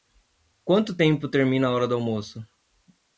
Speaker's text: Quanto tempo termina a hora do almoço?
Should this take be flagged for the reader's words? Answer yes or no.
no